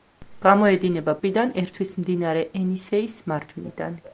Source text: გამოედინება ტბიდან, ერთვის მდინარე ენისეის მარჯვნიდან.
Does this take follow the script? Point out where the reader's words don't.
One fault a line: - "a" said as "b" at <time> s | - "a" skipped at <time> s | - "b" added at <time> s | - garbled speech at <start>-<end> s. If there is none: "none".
none